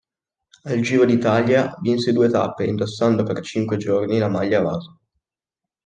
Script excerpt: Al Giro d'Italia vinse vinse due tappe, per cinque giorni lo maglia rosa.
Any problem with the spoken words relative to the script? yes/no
yes